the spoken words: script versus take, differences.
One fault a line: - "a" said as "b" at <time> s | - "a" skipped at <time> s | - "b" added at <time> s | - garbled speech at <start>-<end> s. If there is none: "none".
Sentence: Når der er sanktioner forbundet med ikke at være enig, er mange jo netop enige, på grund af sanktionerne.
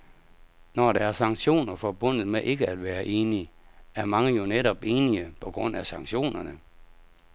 none